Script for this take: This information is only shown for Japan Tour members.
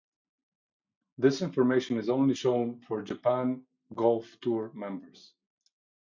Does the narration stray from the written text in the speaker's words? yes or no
yes